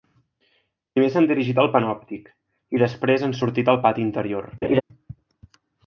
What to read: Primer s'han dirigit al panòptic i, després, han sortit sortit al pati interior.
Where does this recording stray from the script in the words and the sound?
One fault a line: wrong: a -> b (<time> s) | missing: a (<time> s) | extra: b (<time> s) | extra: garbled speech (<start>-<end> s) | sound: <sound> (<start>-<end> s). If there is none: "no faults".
missing: sortit (3.7 s)
sound: laugh (4.6-4.8 s)